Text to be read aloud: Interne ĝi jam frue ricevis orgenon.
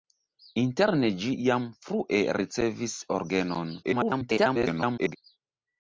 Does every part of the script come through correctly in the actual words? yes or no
no